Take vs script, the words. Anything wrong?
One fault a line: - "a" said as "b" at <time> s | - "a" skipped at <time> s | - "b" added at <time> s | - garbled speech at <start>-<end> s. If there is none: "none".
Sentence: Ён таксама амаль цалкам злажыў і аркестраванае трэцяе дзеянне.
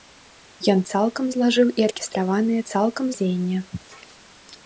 - "таксама амаль" skipped at 0.8 s
- "трэцяе" said as "цалкам" at 2.7 s